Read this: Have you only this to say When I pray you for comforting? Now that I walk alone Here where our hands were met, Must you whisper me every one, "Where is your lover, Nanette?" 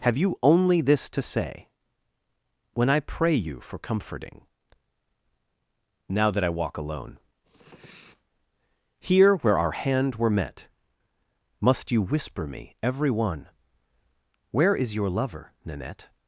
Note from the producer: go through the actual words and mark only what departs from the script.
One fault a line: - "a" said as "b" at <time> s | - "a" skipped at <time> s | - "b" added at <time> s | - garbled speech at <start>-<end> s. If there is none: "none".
- "hands" said as "hand" at 9.7 s